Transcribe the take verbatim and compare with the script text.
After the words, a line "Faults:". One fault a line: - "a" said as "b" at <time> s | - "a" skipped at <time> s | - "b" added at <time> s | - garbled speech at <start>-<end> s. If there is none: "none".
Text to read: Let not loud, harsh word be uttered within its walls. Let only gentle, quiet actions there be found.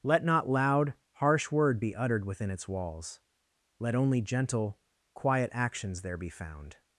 Let not loud, harsh word be uttered within its walls. Let only gentle, quiet actions there be found.
Faults:
none